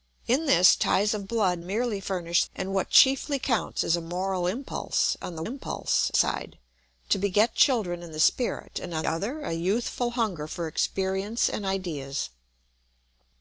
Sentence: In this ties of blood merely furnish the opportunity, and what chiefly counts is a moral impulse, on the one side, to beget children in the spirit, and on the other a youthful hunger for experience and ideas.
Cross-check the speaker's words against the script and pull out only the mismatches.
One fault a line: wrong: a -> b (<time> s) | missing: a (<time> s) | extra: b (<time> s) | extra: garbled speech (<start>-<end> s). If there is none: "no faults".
missing: the opportunity (2.4 s)
wrong: one -> impulse (5.4 s)
missing: the (9.1 s)